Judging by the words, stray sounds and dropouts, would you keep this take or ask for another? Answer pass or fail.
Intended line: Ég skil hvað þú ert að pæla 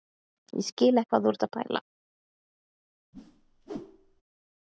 fail